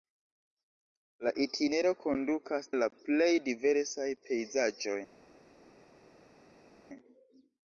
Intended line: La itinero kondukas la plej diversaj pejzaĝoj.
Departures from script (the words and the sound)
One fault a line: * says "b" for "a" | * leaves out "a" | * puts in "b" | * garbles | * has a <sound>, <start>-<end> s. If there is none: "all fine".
all fine